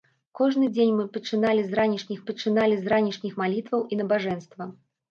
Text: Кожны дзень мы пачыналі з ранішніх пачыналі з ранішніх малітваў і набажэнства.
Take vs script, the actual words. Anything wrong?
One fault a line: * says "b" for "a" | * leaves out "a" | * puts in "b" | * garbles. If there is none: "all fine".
all fine